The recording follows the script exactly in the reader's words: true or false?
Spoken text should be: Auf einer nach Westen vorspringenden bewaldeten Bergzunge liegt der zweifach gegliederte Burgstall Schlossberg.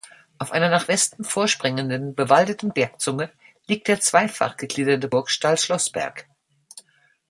true